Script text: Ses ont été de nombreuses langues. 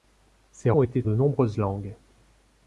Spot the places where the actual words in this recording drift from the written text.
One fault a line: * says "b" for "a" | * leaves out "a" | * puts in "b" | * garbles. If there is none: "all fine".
all fine